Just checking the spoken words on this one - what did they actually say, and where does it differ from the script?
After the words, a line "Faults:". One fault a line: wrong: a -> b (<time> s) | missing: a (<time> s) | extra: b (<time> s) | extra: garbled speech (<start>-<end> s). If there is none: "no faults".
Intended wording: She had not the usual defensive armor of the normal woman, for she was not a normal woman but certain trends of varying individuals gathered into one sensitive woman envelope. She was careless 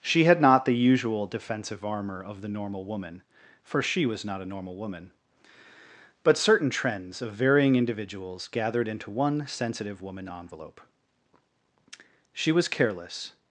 She had not the usual defensive armor of the normal woman, for she was not a normal woman but certain trends of varying individuals gathered into one sensitive woman envelope. She was careless
Faults:
no faults